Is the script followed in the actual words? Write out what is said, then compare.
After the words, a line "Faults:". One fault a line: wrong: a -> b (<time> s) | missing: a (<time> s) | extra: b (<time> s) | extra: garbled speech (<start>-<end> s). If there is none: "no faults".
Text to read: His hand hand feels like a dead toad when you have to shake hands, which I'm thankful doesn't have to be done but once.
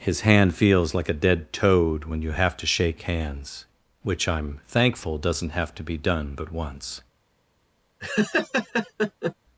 His hand feels like a dead toad when you have to shake hands, which I'm thankful doesn't have to be done but once.
Faults:
missing: hand (0.6 s)